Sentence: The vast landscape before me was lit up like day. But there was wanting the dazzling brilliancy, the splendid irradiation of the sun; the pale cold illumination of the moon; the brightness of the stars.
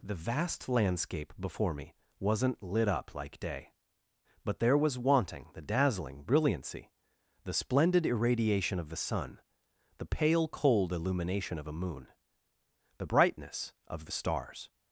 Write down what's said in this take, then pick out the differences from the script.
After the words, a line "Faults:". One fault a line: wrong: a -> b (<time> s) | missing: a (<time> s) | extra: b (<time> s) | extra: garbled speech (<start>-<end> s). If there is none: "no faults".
The vast landscape before me wasn't lit up like day. But there was wanting the dazzling brilliancy, the splendid irradiation of the sun; the pale cold illumination of a moon; the brightness of the stars.
Faults:
wrong: was -> wasn't (2.2 s)
wrong: the -> a (11.7 s)